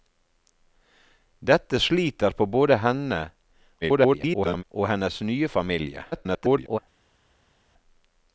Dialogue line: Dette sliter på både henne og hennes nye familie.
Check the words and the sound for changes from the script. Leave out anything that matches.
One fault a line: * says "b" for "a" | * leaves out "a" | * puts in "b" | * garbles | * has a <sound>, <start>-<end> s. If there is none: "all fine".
* garbles
* garbles